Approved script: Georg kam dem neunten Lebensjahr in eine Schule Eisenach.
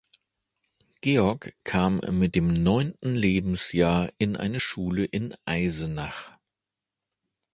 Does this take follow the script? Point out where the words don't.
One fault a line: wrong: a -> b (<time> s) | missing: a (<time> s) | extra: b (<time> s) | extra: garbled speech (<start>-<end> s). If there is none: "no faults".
extra: mit (2.1 s)
extra: in (5.0 s)